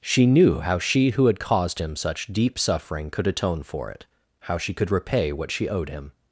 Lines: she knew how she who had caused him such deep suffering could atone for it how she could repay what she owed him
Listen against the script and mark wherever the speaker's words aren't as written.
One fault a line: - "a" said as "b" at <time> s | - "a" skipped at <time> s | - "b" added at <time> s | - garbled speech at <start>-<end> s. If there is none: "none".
none